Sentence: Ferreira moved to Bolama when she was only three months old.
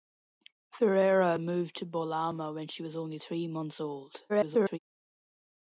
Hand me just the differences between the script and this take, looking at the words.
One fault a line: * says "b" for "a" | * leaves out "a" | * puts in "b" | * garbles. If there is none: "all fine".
* garbles